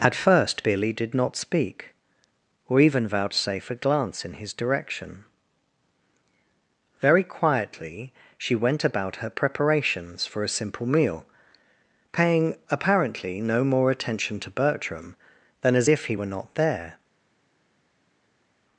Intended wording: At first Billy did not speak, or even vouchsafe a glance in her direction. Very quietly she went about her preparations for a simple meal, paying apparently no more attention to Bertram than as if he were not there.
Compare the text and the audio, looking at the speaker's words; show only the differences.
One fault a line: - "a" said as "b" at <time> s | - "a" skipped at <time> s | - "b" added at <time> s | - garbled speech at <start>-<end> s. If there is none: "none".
- "her" said as "his" at 4.3 s